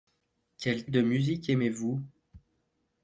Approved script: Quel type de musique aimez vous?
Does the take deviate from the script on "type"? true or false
true